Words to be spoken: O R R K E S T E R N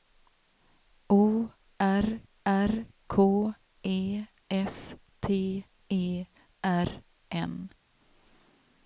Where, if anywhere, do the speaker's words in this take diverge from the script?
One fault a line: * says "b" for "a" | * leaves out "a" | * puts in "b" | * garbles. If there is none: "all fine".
all fine